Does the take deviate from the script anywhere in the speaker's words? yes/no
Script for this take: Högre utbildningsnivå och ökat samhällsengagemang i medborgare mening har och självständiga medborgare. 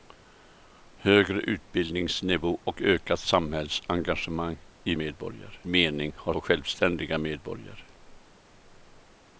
no